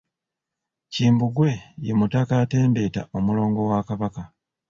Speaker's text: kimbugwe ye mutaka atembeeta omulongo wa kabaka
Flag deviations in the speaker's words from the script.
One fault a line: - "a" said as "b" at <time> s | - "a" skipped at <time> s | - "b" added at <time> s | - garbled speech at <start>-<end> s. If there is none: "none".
none